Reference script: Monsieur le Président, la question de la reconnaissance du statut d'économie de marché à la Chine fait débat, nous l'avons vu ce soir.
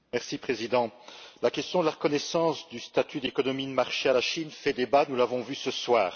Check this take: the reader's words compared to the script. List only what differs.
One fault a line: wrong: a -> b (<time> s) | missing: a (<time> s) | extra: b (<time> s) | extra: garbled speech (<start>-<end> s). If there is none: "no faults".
no faults